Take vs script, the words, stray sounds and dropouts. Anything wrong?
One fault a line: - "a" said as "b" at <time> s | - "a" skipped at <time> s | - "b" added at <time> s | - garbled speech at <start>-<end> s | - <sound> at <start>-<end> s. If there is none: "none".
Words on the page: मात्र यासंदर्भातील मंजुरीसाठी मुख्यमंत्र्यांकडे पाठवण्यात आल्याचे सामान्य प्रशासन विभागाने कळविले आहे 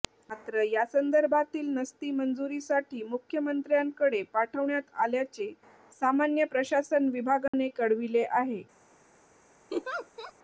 - "नस्ती" added at 1.7 s
- dropout at 7.5-7.5 s
- laugh at 9.7-10.3 s